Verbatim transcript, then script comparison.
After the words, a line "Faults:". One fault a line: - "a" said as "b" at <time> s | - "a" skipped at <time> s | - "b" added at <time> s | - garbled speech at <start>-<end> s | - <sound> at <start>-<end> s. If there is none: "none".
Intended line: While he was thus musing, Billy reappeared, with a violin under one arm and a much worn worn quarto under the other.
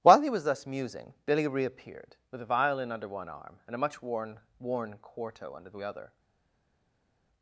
While he was thus musing, Billy reappeared, with a violin under one arm and a much worn worn quarto under the other.
Faults:
none